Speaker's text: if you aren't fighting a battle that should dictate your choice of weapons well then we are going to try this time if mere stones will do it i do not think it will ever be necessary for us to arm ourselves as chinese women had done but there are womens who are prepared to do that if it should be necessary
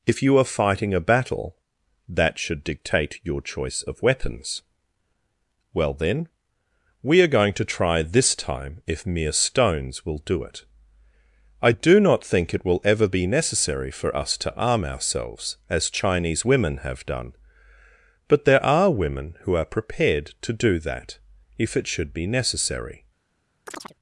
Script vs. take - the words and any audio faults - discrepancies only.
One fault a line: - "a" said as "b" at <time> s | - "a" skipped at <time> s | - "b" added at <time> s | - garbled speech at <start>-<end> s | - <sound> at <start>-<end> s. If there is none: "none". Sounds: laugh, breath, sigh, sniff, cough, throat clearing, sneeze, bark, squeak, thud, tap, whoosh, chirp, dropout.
- "aren't" said as "are" at 0.4 s
- "had" said as "have" at 16.8 s
- "womens" said as "women" at 18.9 s
- chirp at 23.7-23.9 s